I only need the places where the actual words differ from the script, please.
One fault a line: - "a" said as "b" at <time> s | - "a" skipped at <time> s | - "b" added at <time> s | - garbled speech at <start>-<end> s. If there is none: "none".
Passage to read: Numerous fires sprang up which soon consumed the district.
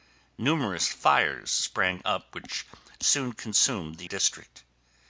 none